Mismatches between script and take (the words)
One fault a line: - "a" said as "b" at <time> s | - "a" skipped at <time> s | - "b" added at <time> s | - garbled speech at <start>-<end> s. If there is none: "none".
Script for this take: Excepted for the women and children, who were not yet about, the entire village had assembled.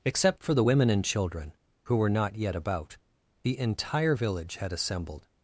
- "Excepted" said as "Except" at 0.0 s